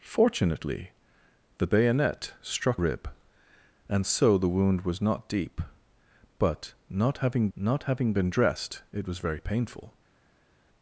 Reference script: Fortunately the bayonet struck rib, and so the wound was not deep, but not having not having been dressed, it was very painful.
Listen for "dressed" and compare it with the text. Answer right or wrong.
right